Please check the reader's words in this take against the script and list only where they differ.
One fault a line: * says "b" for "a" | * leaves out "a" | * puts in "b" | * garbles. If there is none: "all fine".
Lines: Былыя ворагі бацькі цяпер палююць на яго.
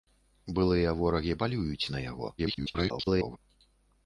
* leaves out "бацькі цяпер"
* garbles